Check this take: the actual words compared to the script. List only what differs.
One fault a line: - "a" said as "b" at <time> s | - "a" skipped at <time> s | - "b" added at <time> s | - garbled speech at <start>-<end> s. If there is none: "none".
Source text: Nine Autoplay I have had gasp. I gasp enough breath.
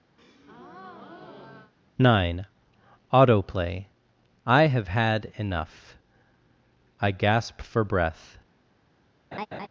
- "gasp" said as "enough" at 5.4 s
- "enough" said as "for" at 7.6 s